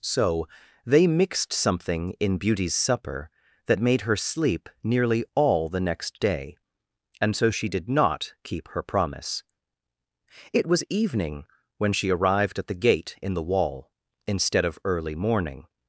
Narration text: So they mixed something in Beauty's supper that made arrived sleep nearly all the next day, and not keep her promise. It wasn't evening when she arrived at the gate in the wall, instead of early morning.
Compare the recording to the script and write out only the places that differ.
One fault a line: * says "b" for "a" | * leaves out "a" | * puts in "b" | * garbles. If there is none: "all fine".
* says "her" for "arrived"
* puts in "so she did"
* says "was" for "wasn't"